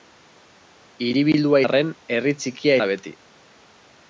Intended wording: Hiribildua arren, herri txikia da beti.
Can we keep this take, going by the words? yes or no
yes